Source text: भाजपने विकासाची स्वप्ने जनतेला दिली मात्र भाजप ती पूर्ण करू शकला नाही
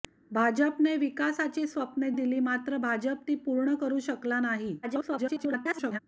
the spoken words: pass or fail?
fail